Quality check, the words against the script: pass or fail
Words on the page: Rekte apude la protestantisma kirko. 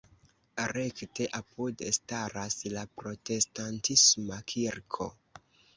fail